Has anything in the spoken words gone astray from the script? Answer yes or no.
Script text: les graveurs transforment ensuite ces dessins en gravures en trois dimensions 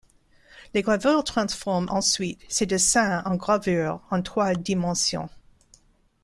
no